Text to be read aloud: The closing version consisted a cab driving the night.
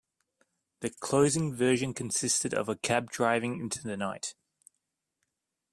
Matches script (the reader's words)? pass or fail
fail